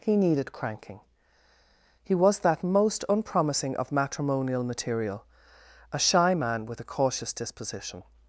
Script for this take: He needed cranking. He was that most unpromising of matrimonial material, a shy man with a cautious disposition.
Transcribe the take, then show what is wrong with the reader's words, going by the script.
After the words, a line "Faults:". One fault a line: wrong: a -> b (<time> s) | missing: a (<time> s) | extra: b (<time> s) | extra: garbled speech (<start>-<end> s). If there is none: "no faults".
He needed cranking. He was that most unpromising of matrimonial material, a shy man with a cautious disposition.
Faults:
no faults